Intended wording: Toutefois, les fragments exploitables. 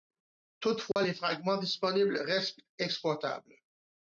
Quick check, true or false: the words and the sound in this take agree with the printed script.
false